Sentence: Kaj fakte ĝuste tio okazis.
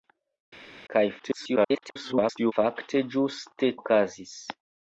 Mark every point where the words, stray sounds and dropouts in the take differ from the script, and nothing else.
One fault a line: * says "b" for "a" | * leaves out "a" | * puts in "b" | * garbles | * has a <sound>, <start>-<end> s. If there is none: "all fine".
* garbles
* leaves out "tio"